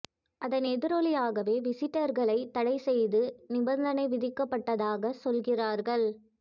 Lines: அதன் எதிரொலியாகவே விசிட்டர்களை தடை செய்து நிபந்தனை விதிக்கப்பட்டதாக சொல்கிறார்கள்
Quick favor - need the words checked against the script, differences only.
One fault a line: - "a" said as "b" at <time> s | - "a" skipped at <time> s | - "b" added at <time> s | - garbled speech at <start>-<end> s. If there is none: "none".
none